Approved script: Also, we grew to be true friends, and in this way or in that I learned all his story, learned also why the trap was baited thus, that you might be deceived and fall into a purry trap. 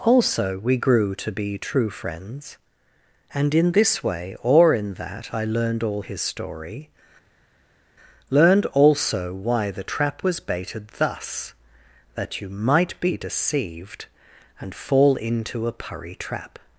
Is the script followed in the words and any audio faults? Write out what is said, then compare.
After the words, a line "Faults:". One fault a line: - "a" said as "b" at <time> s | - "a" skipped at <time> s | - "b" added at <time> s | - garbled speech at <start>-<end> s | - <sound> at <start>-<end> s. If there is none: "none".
Also, we grew to be true friends, and in this way or in that I learned all his story, learned also why the trap was baited thus, that you might be deceived and fall into a purry trap.
Faults:
none